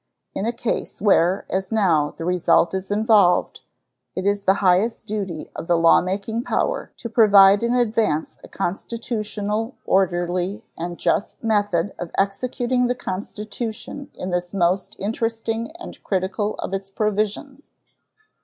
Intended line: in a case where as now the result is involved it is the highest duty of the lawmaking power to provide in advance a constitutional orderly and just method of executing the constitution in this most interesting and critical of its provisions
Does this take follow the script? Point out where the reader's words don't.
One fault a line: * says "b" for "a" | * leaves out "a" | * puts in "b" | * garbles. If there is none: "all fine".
all fine